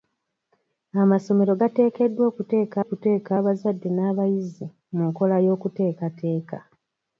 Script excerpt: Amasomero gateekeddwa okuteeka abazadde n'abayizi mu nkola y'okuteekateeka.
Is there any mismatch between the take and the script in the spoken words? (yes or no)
yes